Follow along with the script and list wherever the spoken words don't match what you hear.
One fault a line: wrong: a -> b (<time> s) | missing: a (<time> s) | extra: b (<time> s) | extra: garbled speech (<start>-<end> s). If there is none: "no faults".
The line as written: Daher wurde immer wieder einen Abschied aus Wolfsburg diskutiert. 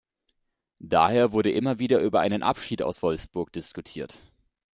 extra: über (2.0 s)